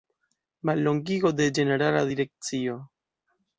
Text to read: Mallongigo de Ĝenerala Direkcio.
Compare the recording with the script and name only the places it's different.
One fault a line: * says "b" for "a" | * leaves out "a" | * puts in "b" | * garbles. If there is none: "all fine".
all fine